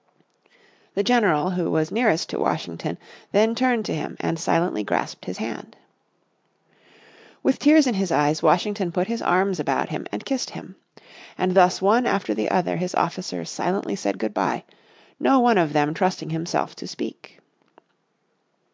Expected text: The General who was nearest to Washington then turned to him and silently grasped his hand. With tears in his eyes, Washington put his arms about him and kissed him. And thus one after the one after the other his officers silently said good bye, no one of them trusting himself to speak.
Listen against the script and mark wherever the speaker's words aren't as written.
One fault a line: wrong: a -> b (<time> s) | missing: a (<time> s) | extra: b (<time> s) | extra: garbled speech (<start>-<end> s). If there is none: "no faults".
missing: one after the (12.5 s)